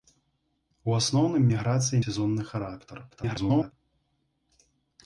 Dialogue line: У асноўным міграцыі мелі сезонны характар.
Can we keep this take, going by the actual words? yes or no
no